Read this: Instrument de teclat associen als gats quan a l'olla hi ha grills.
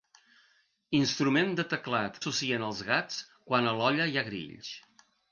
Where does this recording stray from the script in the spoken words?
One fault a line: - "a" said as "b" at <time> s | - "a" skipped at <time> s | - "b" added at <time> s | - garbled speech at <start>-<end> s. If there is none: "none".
none